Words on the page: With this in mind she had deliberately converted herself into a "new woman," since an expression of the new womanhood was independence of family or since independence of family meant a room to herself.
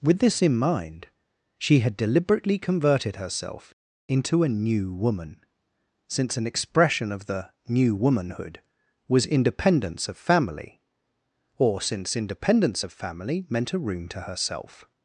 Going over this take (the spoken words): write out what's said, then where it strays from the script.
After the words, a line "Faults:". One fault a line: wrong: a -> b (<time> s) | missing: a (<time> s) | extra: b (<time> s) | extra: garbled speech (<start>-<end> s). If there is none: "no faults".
With this in mind she had deliberately converted herself into a "new woman," since an expression of the new womanhood was independence of family or since independence of family meant a room to herself.
Faults:
no faults